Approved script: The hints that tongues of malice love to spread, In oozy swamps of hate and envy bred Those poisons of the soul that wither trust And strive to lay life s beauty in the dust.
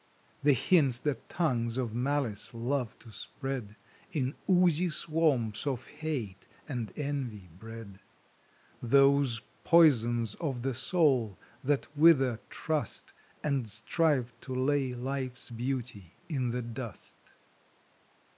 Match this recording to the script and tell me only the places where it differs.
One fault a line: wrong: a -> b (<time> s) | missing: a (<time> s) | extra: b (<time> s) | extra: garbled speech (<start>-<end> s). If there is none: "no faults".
no faults